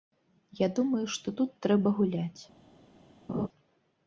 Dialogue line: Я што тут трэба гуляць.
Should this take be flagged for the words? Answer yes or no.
yes